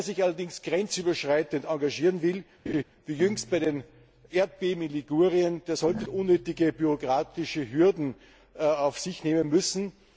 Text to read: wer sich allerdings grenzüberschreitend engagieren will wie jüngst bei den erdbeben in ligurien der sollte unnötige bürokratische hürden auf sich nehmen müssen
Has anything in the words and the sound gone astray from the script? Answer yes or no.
yes